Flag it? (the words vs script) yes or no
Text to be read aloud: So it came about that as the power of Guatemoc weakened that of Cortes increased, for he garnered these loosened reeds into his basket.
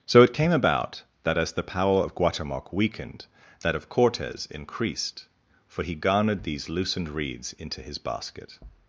no